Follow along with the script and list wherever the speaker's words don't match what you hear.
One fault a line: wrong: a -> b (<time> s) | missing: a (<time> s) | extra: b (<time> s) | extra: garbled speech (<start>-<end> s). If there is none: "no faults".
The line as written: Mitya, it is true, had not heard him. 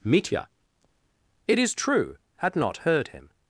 no faults